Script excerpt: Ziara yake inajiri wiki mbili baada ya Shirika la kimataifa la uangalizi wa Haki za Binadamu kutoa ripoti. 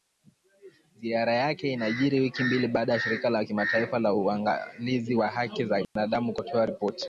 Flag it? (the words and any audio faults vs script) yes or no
yes